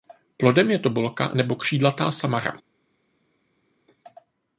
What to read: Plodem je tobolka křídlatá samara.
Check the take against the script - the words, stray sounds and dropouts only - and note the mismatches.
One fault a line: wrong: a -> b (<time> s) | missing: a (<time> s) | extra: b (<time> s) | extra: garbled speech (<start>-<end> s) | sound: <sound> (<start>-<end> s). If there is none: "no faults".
extra: nebo (1.3 s)